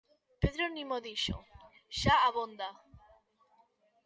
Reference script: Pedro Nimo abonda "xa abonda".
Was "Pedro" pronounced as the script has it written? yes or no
yes